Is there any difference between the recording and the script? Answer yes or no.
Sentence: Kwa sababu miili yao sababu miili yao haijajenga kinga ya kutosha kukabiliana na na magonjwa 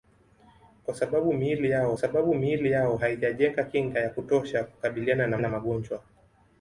no